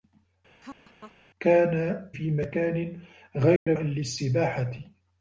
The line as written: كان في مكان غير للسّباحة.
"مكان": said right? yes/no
yes